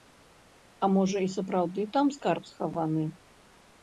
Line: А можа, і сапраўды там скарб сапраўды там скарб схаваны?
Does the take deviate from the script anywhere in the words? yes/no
yes